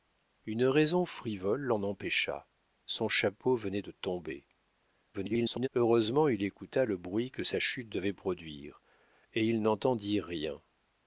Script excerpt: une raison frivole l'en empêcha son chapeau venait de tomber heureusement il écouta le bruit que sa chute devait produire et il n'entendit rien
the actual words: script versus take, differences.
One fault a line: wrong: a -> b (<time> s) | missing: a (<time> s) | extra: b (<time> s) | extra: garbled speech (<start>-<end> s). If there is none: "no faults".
extra: garbled speech (5.1-5.7 s)